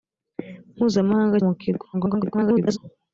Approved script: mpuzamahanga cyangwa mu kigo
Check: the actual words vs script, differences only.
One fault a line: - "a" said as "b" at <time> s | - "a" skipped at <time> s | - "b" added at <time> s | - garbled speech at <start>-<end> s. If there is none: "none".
- "cyangwa" skipped at 1.4 s
- garbled speech at 1.9-2.8 s